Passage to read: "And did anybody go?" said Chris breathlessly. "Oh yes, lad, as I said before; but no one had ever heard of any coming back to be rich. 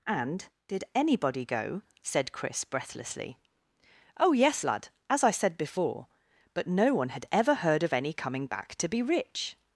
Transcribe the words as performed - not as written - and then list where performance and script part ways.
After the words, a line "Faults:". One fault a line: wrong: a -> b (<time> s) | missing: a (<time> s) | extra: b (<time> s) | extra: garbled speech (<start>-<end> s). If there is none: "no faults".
"And did anybody go?" said Chris breathlessly. "Oh yes, lad, as I said before; but no one had ever heard of any coming back to be rich.
Faults:
no faults